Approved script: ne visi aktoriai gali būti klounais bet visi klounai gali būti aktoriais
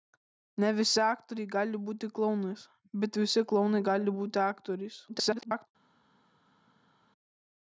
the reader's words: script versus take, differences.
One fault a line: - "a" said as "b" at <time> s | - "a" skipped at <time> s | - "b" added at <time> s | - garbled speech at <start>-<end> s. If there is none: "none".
- garbled speech at 5.1-5.7 s